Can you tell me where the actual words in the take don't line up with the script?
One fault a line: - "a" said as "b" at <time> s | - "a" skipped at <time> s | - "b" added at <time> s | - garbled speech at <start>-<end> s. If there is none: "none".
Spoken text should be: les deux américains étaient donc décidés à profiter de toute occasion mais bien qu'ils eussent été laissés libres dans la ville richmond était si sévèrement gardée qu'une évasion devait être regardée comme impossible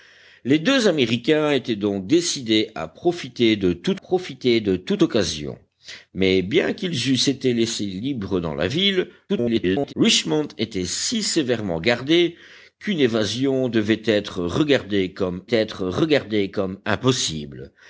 - "profiter de toute" added at 3.9 s
- garbled speech at 9.3-9.9 s
- "être regardée comme" added at 15.5 s